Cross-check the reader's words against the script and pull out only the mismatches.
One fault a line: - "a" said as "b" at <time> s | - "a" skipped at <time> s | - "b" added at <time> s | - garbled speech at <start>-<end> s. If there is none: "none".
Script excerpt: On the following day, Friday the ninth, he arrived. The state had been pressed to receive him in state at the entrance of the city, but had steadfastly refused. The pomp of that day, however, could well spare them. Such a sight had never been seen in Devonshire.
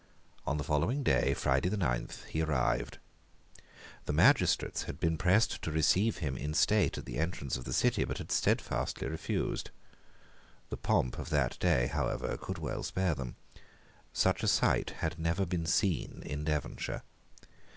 - "state" said as "magistrates" at 4.1 s